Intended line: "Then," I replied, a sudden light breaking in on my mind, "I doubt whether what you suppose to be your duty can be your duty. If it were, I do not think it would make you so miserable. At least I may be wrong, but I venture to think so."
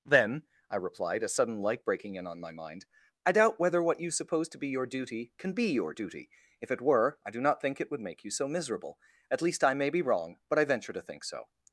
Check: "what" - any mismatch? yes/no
no